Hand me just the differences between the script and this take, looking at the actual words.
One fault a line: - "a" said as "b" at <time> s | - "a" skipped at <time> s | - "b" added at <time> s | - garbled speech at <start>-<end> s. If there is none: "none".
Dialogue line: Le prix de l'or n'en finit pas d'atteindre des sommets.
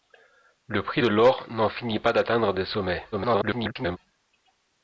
- garbled speech at 3.1-4.0 s